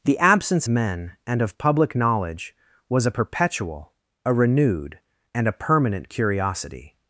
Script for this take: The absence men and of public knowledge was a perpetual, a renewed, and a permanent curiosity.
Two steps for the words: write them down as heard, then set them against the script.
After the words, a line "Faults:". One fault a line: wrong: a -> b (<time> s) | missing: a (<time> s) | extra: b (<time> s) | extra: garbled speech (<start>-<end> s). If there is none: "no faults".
The absence men and of public knowledge was a perpetual, a renewed, and a permanent curiosity.
Faults:
no faults